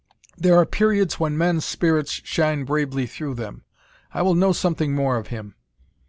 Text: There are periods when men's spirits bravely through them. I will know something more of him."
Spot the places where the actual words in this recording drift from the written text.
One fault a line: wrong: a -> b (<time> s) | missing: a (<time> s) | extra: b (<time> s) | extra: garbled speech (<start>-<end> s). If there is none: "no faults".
extra: shine (2.2 s)